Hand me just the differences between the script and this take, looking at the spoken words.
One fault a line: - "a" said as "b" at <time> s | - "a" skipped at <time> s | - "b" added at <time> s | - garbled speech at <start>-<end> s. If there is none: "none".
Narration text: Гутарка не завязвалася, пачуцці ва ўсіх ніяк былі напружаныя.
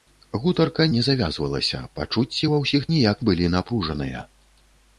none